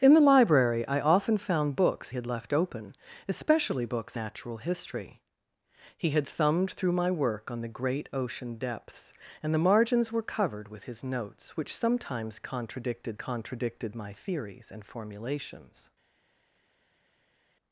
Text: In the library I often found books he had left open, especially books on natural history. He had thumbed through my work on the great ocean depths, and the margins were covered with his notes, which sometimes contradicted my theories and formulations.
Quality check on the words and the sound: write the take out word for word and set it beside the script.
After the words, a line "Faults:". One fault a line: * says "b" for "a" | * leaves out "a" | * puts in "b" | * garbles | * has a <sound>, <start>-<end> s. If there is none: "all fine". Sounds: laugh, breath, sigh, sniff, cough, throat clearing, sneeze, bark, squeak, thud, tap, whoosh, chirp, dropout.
In the library I often found books had left open, especially books natural history. He had thumbed through my work on the great ocean depths, and the margins were covered with his notes, which sometimes contradicted contradicted my theories and formulations.
Faults:
* leaves out "he"
* leaves out "on"
* puts in "contradicted"